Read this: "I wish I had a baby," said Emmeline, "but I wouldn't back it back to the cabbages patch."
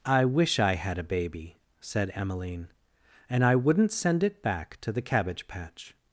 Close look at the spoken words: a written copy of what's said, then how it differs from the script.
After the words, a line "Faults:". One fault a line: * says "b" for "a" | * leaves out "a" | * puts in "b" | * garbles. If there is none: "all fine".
"I wish I had a baby," said Emmeline, "and I wouldn't send it back to the cabbage patch."
Faults:
* says "and" for "but"
* says "send" for "back"
* says "cabbage" for "cabbages"